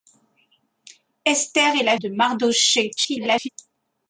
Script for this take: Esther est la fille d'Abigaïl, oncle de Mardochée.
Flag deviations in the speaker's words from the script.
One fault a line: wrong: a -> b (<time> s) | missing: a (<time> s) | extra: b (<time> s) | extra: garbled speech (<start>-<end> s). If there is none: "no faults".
missing: fille d'Abigaïl oncle (2.0 s)
extra: garbled speech (3.0-3.5 s)